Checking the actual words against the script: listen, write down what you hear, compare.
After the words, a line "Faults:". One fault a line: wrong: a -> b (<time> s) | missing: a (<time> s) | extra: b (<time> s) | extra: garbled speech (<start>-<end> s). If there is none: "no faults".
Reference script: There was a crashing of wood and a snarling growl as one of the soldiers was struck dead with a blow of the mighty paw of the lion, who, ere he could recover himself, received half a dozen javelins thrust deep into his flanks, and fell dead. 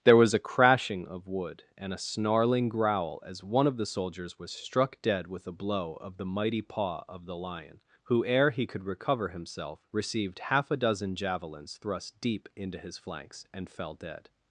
There was a crashing of wood and a snarling growl as one of the soldiers was struck dead with a blow of the mighty paw of the lion, who, ere he could recover himself, received half a dozen javelins thrust deep into his flanks, and fell dead.
Faults:
no faults